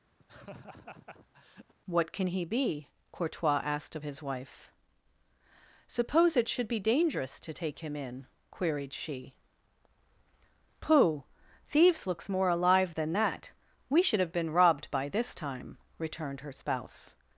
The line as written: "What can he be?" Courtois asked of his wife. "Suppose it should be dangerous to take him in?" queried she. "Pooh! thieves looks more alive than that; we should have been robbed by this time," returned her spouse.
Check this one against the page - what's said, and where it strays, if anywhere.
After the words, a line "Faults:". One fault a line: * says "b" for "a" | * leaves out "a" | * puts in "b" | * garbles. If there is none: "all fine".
"What can he be?" Courtois asked of his wife. "Suppose it should be dangerous to take him in?" queried she. "Pooh! thieves looks more alive than that; we should have been robbed by this time," returned her spouse.
Faults:
all fine